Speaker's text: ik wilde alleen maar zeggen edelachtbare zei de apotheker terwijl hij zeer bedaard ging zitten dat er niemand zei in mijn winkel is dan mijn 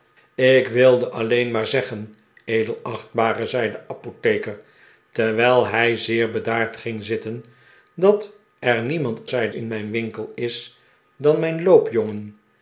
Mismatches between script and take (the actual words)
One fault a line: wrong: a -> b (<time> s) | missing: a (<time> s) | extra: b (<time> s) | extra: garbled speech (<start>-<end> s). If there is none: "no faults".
no faults